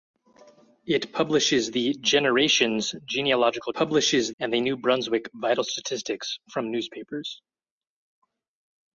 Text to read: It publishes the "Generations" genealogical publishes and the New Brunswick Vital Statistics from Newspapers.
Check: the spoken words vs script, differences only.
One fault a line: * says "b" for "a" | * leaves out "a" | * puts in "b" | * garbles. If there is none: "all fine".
all fine